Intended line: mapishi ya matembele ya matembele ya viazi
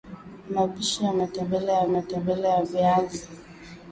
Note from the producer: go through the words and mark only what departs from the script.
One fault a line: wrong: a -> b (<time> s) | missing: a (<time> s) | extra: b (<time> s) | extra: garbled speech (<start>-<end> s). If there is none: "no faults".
no faults